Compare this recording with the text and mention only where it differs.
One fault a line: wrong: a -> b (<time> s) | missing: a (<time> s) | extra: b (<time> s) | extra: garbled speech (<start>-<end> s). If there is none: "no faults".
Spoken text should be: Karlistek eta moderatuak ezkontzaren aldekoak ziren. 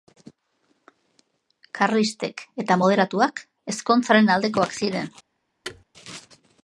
no faults